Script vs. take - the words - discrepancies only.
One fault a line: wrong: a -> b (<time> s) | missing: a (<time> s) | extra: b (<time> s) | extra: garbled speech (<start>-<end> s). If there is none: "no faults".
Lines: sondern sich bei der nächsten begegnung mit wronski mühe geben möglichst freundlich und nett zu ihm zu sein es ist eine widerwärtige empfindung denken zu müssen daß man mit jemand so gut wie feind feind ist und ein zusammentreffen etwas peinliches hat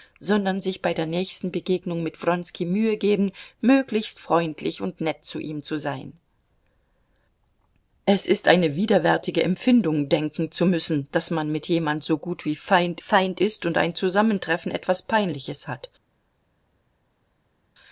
no faults